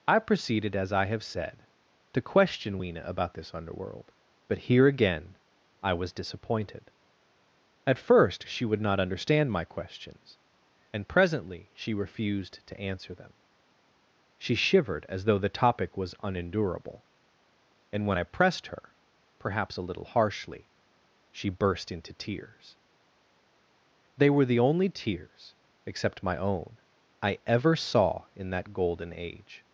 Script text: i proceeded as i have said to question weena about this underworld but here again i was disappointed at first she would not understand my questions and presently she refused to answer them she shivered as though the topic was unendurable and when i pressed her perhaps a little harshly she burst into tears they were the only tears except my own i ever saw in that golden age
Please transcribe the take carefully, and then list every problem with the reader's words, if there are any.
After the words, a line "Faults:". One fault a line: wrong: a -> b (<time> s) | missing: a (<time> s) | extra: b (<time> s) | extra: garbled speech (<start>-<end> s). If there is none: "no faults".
i proceeded as i have said to question weena about this underworld but here again i was disappointed at first she would not understand my questions and presently she refused to answer them she shivered as though the topic was unendurable and when i pressed her perhaps a little harshly she burst into tears they were the only tears except my own i ever saw in that golden age
Faults:
no faults